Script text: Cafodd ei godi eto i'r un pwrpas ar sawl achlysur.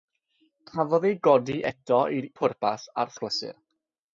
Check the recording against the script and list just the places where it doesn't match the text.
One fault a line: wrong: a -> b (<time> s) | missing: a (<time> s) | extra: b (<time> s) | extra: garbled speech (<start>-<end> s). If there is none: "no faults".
missing: un (2.3 s)
missing: sawl (3.2 s)